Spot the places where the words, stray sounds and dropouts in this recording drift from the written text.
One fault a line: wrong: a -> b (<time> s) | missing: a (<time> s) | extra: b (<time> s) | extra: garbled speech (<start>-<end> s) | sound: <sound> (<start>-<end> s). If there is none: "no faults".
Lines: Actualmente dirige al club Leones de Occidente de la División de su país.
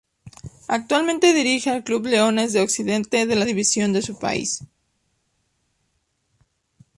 no faults